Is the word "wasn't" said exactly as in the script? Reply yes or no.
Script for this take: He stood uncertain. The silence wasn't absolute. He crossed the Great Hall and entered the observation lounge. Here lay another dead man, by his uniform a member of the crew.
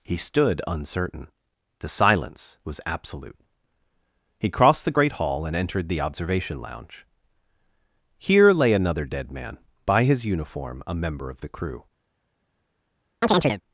no